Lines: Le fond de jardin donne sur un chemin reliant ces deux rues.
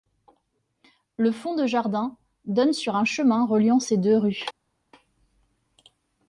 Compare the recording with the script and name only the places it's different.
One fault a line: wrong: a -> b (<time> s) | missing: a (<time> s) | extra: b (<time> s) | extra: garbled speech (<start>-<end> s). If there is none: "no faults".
no faults